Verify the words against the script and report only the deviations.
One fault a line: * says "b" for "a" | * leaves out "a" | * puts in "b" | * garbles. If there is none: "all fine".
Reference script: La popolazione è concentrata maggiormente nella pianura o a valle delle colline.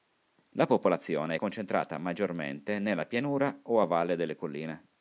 all fine